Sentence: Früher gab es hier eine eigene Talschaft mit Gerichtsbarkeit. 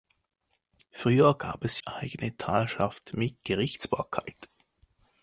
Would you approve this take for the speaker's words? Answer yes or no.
no